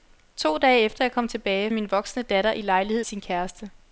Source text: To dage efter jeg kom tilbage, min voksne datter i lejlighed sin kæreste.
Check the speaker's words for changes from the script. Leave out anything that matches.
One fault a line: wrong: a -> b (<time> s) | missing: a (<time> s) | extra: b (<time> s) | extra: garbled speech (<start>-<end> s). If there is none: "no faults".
no faults